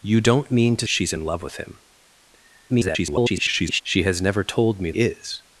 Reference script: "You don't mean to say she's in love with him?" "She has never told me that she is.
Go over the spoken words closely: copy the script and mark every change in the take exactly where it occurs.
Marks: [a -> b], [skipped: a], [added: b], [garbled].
"You don't mean to [skipped: say] she's in love with him?" [garbled] "She has never told me [skipped: that she] is.